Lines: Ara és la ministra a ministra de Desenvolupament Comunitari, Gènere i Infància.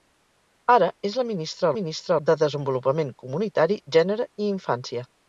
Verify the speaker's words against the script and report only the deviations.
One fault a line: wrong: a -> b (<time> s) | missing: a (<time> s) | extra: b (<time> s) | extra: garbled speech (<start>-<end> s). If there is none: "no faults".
no faults